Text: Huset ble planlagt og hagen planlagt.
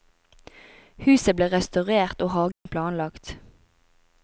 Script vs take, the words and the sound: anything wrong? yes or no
yes